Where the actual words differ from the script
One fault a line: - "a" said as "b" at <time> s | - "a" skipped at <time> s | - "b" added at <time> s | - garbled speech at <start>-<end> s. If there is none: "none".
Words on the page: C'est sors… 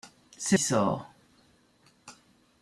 none